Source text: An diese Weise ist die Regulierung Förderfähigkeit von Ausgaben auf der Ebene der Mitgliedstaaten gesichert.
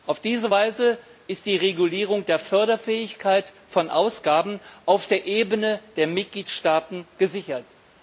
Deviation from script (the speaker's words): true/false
true